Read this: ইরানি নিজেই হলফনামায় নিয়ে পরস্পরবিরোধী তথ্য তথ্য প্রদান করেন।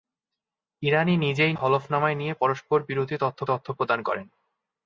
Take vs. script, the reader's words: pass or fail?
pass